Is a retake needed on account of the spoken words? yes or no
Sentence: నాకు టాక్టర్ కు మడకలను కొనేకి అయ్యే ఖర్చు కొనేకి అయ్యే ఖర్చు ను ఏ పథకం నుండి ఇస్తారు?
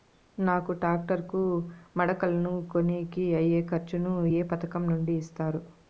yes